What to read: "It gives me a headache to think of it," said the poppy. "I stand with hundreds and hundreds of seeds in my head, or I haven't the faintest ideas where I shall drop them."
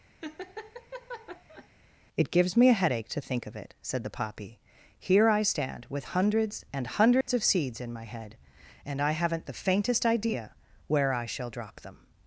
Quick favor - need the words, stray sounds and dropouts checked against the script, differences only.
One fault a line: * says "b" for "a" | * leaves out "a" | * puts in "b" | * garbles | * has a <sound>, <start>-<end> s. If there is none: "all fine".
* has a laugh, 0.2-1.7 s
* puts in "Here"
* has a dropout, 7.2-7.3 s
* says "and" for "or"
* says "idea" for "ideas"